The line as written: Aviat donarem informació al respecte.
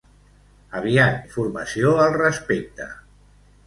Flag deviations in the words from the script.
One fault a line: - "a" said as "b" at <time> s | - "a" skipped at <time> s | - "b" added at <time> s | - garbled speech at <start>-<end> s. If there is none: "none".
- "donarem" skipped at 1.2 s